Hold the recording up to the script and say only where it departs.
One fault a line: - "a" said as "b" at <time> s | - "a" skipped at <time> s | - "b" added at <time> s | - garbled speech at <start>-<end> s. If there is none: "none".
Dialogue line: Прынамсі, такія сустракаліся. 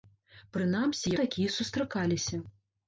none